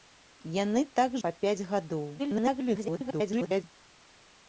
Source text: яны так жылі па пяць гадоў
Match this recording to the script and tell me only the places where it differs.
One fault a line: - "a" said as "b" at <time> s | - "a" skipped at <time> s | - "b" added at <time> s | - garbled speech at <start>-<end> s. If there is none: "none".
- "жылі" skipped at 1.2 s
- garbled speech at 2.2-3.6 s